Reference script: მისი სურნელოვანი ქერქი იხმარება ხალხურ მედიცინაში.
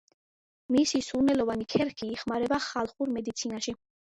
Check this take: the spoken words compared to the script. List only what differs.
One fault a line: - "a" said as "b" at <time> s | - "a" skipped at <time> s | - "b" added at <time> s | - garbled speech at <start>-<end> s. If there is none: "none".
none